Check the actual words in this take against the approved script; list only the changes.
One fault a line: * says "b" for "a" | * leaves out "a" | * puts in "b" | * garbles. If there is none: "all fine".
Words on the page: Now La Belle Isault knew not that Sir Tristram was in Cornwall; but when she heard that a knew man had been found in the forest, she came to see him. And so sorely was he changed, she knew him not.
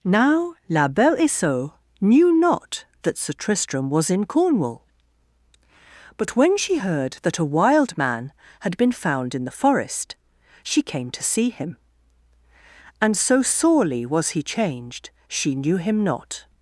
* says "wild" for "knew"